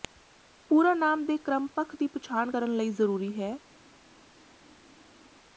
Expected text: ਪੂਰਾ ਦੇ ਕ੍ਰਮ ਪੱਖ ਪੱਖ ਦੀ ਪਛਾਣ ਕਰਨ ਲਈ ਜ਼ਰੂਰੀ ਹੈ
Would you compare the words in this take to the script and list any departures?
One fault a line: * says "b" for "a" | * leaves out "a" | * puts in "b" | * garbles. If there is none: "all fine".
* puts in "ਨਾਮ"
* leaves out "ਪੱਖ"